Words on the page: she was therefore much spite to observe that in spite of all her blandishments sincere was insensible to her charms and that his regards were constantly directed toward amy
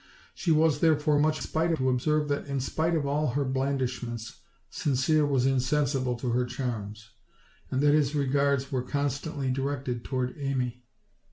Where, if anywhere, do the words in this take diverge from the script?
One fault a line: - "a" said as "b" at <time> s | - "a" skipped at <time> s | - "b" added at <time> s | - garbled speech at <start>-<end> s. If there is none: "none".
none